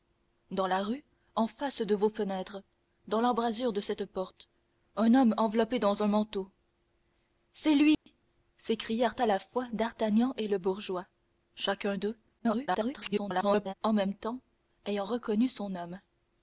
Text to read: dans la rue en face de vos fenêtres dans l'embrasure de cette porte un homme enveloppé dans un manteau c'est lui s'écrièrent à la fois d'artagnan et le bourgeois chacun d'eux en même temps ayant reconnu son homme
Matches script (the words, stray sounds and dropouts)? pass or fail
fail